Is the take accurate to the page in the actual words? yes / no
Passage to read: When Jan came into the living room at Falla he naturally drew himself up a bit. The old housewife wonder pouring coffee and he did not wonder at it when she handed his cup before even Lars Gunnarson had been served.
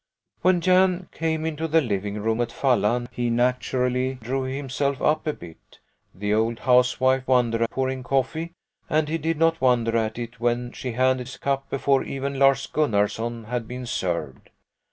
yes